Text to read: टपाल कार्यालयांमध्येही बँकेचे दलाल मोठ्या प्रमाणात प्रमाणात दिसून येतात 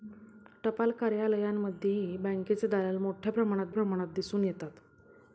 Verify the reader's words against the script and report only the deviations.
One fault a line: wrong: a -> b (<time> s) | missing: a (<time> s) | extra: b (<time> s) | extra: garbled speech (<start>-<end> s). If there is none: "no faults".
no faults